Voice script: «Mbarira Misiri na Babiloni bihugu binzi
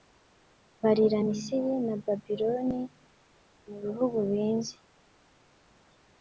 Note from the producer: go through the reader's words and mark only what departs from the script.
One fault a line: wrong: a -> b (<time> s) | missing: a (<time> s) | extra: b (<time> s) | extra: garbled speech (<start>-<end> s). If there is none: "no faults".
extra: mu (3.7 s)